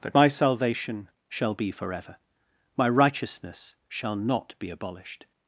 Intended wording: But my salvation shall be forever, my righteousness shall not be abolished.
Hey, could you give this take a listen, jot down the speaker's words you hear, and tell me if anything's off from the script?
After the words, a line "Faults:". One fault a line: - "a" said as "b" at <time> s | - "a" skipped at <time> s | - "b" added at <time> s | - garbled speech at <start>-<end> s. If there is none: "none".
But my salvation shall be forever, my righteousness shall not be abolished.
Faults:
none